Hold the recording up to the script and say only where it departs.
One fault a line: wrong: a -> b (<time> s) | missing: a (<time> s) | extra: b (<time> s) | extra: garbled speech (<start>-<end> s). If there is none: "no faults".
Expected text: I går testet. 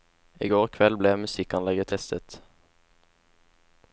extra: kveld ble musikkanlegget (0.8 s)